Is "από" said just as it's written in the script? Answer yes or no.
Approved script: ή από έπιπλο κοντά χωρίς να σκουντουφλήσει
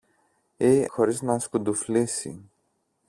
no